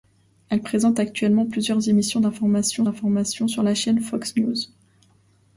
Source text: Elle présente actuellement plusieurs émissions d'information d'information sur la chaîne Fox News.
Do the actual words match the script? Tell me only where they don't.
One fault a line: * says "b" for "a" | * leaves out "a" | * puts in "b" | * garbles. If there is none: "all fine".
all fine